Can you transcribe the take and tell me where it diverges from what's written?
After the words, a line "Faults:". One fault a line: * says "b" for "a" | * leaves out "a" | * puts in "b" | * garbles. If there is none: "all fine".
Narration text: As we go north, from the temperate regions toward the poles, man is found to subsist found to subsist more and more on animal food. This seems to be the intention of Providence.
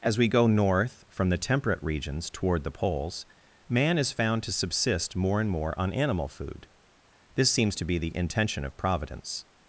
As we go north, from the temperate regions toward the poles, man is found to subsist more and more on animal food. This seems to be the intention of Providence.
Faults:
* leaves out "found to subsist"